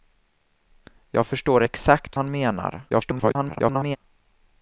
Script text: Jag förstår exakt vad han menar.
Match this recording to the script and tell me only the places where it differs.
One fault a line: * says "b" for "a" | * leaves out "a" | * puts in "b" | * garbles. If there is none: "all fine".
* leaves out "vad"
* garbles